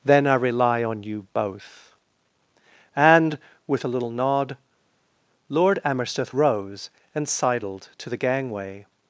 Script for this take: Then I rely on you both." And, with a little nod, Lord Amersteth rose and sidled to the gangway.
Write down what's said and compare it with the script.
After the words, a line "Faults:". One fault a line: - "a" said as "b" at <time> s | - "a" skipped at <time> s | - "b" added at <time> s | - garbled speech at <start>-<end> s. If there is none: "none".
Then I rely on you both." And, with a little nod, Lord Amersteth rose and sidled to the gangway.
Faults:
none